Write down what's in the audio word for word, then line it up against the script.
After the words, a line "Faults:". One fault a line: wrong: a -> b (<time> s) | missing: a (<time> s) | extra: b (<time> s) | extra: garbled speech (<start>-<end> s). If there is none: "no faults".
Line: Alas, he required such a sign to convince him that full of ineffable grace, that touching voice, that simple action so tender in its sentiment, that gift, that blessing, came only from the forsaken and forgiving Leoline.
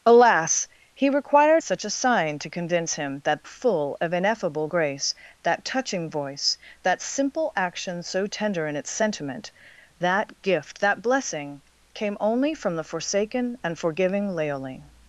Alas, he required such a sign to convince him that full of ineffable grace, that touching voice, that simple action so tender in its sentiment, that gift, that blessing, came only from the forsaken and forgiving Leoline.
Faults:
no faults